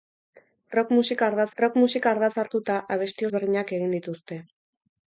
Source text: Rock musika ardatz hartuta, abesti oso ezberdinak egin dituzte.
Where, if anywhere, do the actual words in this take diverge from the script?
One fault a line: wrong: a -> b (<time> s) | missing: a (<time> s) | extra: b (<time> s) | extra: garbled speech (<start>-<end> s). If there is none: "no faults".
extra: rock musika ardatz (1.6 s)
missing: oso (3.3 s)